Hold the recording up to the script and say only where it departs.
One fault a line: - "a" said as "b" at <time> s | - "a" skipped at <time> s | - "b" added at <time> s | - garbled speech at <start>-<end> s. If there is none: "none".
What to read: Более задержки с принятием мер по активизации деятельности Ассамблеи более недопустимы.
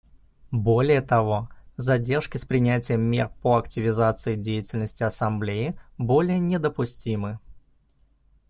- "того" added at 1.0 s